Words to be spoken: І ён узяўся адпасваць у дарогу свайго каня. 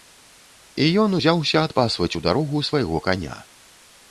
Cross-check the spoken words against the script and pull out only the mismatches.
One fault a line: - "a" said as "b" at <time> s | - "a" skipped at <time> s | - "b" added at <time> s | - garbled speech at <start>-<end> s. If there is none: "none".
none